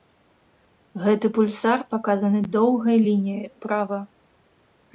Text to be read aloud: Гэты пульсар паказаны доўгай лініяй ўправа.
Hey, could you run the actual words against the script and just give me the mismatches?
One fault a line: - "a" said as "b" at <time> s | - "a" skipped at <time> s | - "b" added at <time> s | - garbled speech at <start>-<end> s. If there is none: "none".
none